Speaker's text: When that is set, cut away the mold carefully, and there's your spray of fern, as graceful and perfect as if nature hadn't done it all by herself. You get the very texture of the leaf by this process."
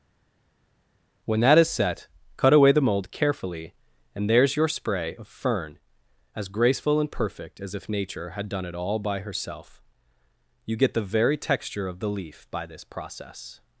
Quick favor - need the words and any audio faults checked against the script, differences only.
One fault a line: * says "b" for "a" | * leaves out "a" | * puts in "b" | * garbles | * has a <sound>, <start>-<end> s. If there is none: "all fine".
* says "had" for "hadn't"